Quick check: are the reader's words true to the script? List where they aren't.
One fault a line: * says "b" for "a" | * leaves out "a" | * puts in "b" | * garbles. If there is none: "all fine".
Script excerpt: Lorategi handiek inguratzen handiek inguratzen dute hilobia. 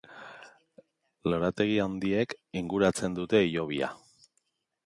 * leaves out "handiek inguratzen"